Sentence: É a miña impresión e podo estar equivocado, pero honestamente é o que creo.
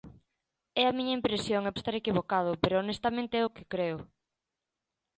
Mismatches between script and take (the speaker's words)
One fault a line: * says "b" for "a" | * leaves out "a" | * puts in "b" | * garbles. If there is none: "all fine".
* leaves out "podo"